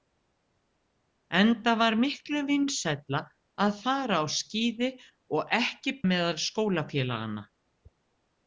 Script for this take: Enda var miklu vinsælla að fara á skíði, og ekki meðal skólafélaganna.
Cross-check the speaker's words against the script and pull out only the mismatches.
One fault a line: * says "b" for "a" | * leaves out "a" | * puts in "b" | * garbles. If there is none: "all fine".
all fine